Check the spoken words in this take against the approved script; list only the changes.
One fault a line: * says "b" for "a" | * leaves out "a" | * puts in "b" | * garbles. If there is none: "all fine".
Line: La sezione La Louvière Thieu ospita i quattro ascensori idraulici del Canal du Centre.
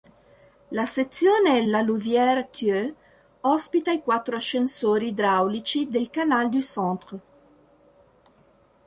all fine